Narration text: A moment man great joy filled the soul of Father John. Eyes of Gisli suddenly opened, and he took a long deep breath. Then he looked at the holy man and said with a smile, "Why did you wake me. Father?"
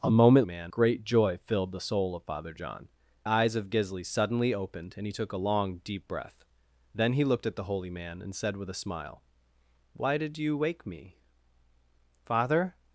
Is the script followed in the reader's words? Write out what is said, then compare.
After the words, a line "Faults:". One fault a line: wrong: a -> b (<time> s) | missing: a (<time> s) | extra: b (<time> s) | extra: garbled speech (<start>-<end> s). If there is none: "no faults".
A moment man great joy filled the soul of Father John. Eyes of Gisli suddenly opened, and he took a long deep breath. Then he looked at the holy man and said with a smile, "Why did you wake me. Father?"
Faults:
no faults